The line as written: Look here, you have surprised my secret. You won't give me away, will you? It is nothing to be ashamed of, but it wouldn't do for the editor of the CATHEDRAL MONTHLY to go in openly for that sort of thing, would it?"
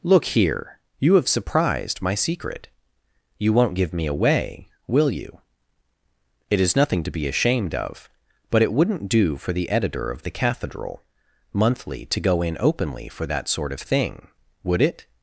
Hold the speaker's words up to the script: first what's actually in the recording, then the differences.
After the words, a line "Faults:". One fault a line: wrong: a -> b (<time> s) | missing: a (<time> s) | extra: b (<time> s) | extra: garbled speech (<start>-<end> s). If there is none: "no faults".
Look here, you have surprised my secret. You won't give me away, will you? It is nothing to be ashamed of, but it wouldn't do for the editor of the CATHEDRAL MONTHLY to go in openly for that sort of thing, would it?"
Faults:
no faults